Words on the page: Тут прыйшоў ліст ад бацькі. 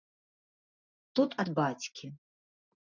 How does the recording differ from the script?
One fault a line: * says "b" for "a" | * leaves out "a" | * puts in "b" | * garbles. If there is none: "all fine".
* leaves out "прыйшоў ліст"